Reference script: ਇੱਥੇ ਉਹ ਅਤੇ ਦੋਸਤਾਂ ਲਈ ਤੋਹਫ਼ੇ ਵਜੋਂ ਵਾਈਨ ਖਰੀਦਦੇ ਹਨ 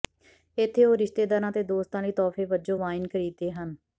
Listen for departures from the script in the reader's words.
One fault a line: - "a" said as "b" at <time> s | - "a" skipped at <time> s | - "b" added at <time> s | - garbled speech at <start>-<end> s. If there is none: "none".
- "ਰਿਸ਼ਤੇਦਾਰਾਂ" added at 1.0 s